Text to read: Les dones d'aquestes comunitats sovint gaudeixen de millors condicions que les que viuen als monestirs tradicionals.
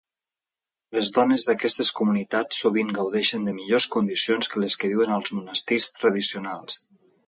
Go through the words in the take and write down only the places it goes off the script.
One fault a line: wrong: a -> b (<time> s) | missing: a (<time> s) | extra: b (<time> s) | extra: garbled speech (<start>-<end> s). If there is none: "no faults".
no faults